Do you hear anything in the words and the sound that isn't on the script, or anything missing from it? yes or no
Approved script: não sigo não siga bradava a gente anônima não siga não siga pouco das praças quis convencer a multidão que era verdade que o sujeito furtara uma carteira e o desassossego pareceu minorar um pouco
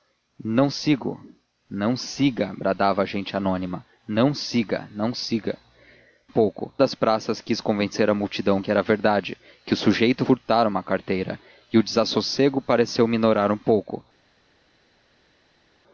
no